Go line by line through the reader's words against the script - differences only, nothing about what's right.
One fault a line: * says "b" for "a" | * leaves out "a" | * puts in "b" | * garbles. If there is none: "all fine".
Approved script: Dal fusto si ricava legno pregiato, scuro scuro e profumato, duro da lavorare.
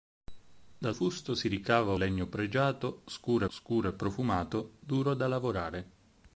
all fine